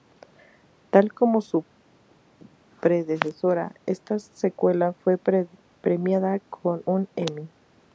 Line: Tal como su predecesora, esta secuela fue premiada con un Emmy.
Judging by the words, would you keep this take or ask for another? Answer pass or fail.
pass